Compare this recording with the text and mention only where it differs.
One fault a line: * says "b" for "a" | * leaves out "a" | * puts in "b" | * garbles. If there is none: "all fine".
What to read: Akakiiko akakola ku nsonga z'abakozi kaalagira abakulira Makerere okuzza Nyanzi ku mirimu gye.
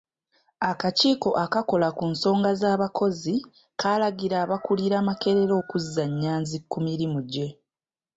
all fine